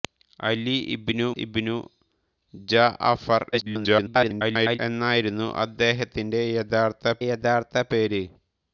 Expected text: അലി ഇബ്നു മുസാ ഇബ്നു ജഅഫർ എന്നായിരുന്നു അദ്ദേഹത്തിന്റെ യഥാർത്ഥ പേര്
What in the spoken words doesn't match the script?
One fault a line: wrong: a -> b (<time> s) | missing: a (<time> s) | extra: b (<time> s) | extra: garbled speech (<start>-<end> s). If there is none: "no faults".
missing: മുസാ (1.3 s)
extra: garbled speech (3.5-4.8 s)
extra: യഥാർത്ഥ (7.2 s)